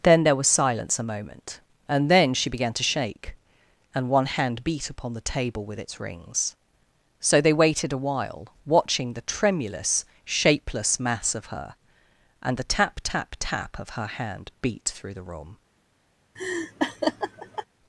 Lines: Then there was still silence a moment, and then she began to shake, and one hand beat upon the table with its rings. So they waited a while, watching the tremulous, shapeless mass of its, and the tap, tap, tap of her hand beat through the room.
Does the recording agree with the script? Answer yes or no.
no